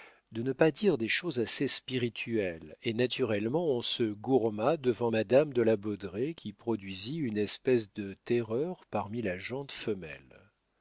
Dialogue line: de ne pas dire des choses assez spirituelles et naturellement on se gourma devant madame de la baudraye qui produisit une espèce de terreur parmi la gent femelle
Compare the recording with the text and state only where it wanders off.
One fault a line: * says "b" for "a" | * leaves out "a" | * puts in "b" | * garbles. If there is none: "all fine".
all fine